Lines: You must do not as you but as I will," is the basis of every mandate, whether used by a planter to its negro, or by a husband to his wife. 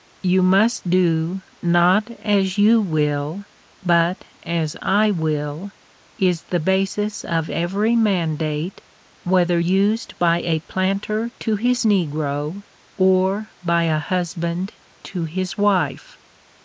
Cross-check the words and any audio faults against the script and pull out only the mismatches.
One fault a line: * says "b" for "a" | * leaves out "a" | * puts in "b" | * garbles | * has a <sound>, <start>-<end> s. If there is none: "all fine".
* puts in "will"
* says "his" for "its"